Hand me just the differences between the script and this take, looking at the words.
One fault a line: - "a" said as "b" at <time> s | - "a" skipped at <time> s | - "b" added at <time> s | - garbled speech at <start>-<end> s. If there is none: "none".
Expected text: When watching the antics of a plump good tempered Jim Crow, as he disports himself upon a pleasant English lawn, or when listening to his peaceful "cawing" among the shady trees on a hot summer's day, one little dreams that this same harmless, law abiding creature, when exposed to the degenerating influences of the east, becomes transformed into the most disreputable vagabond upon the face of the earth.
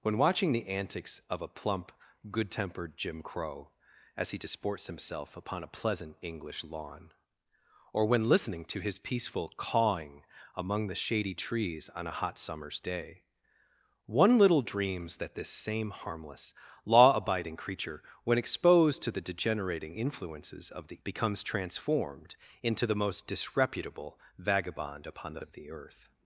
- "east" skipped at 21.0 s
- "face" skipped at 25.4 s